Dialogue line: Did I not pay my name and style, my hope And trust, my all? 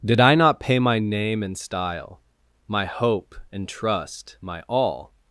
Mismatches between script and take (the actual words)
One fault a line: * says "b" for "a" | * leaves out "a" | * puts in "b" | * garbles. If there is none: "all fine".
all fine